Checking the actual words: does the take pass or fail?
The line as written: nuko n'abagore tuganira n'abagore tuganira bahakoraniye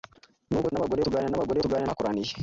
pass